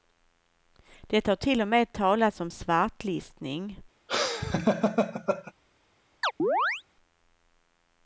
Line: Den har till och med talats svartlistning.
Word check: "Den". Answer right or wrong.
wrong